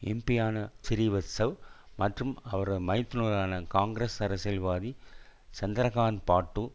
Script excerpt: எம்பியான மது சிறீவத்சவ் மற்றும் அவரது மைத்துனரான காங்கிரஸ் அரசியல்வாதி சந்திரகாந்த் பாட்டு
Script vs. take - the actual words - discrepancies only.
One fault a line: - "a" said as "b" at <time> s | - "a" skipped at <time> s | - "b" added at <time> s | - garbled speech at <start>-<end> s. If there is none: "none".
- "மது" skipped at 0.6 s